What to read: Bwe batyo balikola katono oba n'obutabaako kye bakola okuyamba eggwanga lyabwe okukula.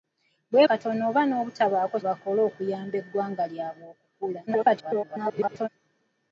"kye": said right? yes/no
no